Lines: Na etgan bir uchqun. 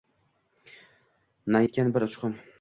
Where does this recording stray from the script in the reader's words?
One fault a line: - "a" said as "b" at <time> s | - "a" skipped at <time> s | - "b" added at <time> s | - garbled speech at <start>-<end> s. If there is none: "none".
none